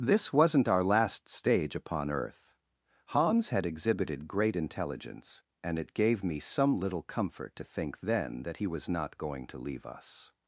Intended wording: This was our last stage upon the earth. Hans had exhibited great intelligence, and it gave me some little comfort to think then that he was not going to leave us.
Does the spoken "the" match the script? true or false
false